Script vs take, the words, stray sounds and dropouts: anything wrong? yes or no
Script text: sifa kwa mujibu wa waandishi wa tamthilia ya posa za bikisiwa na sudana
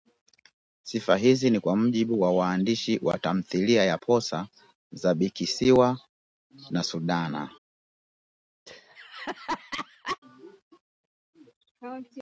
yes